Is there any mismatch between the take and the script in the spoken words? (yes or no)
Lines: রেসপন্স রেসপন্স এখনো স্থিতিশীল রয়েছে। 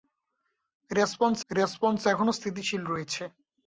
no